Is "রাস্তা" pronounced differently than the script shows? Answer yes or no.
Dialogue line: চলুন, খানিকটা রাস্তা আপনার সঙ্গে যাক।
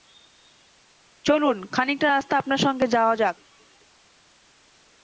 no